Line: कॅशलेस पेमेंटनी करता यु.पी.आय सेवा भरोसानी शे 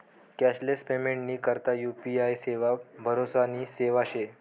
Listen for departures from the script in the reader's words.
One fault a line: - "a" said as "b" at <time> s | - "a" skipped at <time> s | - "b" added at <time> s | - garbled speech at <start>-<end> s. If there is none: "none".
- "सेवा" added at 3.7 s